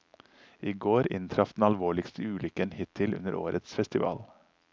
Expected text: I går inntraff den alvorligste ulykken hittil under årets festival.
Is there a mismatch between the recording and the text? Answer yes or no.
no